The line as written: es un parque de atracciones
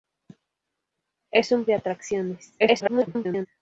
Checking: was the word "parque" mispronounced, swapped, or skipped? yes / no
yes